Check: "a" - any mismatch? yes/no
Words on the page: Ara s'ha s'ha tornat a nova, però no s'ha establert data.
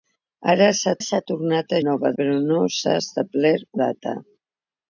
no